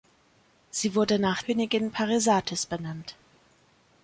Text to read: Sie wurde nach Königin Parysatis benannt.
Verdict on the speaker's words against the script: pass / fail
pass